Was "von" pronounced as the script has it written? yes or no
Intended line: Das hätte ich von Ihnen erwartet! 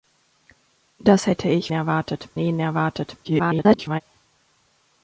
no